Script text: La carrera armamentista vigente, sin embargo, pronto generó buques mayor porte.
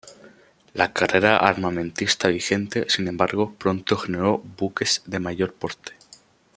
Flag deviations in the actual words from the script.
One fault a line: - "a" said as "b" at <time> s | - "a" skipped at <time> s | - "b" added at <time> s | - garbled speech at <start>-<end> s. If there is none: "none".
- "de" added at 5.1 s